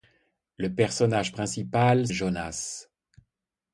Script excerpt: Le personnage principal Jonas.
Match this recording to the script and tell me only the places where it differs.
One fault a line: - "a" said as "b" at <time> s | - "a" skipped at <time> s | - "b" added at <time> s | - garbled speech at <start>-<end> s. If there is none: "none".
none